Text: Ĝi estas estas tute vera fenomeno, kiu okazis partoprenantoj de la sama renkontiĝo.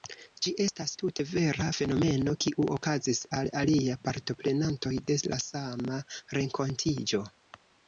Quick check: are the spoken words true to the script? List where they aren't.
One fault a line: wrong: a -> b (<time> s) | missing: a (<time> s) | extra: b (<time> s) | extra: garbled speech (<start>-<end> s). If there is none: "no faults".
missing: estas (0.9 s)
extra: al aliaj (3.4 s)